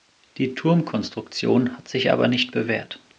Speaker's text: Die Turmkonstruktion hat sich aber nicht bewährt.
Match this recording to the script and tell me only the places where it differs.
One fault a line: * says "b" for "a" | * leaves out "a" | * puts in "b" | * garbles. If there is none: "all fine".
all fine